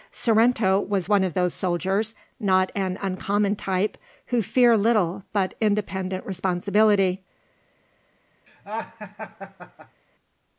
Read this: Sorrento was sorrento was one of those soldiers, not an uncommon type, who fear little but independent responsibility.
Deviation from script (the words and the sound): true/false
true